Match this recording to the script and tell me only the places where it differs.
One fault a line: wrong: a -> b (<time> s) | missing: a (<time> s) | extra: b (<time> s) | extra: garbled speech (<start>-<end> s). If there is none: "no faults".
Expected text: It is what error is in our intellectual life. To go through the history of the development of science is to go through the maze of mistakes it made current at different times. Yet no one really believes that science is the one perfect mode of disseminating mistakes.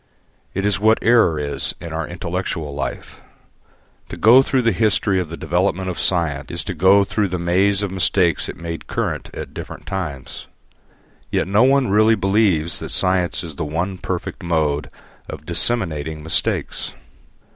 no faults